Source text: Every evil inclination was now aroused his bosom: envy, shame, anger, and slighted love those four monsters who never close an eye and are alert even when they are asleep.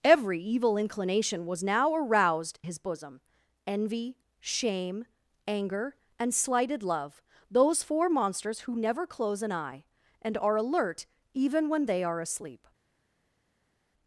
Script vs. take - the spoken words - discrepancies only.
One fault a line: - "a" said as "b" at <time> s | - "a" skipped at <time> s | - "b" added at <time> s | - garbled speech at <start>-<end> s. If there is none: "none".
none